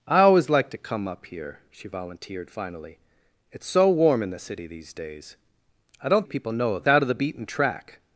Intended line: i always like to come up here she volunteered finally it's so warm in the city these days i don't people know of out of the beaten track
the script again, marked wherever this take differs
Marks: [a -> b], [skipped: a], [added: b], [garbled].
i always like to come up here she volunteered finally it's so warm in the city these days i don't people know of out of the beaten track